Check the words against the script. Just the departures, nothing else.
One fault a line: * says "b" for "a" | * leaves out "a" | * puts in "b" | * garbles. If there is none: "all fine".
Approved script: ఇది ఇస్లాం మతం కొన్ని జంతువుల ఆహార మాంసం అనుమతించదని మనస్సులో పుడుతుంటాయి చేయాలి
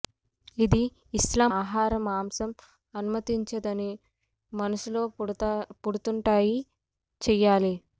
* leaves out "మతం కొన్ని జంతువుల"